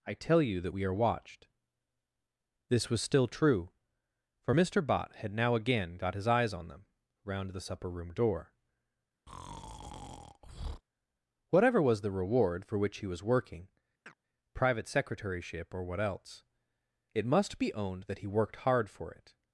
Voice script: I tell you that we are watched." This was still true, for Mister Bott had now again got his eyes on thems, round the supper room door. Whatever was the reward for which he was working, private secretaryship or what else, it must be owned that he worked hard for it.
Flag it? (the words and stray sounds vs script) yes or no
yes